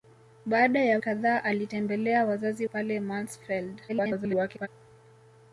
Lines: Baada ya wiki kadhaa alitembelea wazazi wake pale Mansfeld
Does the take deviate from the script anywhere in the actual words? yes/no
yes